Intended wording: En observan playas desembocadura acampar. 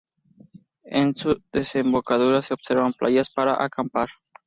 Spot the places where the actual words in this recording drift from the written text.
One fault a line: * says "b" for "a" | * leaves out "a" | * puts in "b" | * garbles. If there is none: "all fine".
* puts in "su desembocadura se"
* says "para" for "desembocadura"